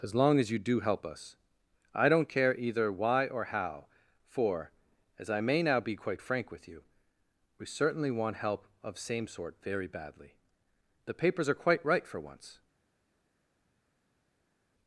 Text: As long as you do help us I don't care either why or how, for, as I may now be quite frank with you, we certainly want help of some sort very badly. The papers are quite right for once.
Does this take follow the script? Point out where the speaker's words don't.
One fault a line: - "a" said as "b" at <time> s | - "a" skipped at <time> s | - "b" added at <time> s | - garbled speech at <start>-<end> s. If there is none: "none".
- "some" said as "same" at 9.0 s